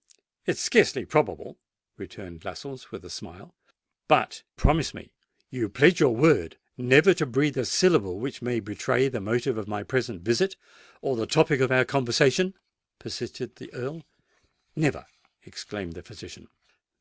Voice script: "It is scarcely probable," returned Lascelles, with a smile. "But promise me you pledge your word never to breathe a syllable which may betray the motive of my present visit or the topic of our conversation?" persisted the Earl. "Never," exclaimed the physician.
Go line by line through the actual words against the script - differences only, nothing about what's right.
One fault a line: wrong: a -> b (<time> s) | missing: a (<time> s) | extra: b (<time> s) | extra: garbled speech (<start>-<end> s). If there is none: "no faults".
no faults